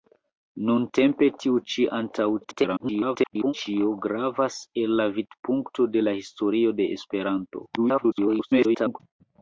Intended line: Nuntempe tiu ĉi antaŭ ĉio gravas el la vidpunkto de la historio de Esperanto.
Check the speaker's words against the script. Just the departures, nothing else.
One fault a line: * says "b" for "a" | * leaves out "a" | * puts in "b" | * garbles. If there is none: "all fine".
* garbles
* garbles